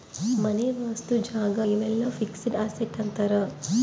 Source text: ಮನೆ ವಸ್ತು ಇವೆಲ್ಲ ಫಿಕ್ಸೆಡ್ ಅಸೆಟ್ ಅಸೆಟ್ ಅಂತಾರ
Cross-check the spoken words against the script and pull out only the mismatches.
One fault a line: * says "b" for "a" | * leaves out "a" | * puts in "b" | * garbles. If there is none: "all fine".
* puts in "ಜಾಗ"
* leaves out "ಅಸೆಟ್"